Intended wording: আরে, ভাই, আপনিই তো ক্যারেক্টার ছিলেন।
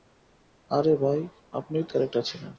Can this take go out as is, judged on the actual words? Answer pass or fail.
pass